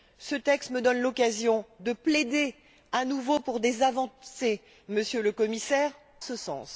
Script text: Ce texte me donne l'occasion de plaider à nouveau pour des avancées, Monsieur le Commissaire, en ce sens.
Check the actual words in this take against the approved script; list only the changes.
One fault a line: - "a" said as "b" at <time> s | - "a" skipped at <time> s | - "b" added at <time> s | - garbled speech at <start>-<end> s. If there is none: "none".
- "en" skipped at 5.9 s